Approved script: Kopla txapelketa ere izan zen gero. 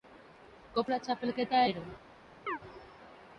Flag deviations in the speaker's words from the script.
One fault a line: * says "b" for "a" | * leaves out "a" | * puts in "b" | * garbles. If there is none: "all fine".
* leaves out "ere izan zen"